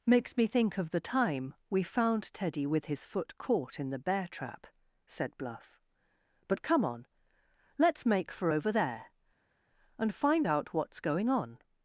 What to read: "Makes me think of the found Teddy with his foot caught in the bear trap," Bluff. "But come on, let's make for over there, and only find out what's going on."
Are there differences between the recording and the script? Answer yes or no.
yes